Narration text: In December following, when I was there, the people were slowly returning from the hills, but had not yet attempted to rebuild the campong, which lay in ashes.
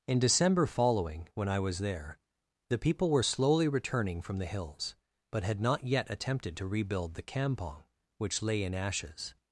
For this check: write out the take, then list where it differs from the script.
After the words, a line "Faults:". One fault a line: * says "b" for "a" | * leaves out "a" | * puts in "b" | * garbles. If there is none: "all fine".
In December following, when I was there, the people were slowly returning from the hills, but had not yet attempted to rebuild the campong, which lay in ashes.
Faults:
all fine